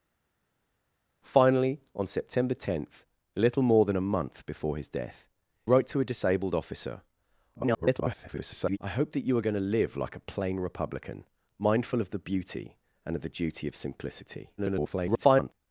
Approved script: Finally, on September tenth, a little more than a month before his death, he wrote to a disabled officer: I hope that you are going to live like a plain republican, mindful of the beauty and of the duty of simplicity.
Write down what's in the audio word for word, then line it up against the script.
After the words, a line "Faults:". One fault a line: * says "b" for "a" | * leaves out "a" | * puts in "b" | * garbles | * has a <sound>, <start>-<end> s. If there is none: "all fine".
Finally, on September tenth, a little more than a month before his death, wrote to a disabled officer: [garbled] I hope that you are going to live like a plain republican, mindful of the beauty and of the duty of simplicity. [garbled]
Faults:
* leaves out "he"
* garbles
* garbles